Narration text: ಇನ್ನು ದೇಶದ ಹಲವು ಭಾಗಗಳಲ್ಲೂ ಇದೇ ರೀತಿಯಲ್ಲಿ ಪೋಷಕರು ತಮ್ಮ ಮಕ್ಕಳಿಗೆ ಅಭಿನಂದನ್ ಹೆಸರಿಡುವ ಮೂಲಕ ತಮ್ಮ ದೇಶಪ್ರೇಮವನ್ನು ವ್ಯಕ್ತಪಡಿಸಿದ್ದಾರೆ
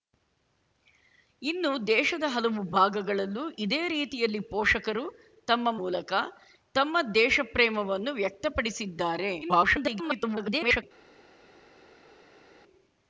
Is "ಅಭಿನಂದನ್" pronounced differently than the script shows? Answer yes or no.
yes